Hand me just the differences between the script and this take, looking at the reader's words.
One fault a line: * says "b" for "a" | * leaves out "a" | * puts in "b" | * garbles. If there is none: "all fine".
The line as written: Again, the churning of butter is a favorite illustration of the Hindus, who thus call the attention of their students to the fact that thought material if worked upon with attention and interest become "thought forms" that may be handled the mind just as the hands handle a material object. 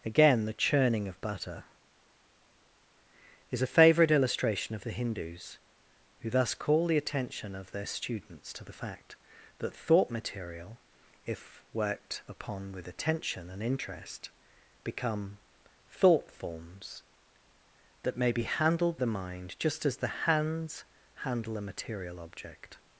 all fine